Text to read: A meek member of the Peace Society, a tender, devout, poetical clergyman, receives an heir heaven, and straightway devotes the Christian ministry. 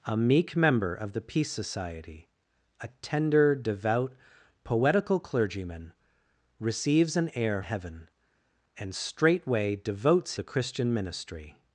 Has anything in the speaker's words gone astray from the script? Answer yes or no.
no